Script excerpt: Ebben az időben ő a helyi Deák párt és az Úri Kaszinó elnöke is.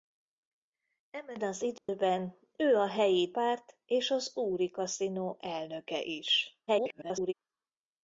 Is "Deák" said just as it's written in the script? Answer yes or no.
no